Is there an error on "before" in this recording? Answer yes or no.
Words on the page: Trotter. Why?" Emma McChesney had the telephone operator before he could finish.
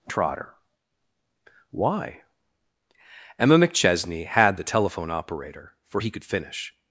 yes